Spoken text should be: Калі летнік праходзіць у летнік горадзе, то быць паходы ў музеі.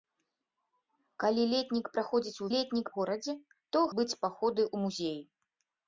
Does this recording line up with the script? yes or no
yes